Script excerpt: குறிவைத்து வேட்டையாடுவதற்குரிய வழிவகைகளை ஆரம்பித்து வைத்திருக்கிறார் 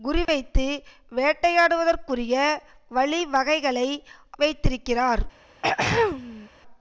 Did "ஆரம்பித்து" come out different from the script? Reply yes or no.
yes